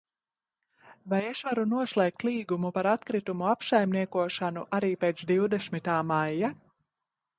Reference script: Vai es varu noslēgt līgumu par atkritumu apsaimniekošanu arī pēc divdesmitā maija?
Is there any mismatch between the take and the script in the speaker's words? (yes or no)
no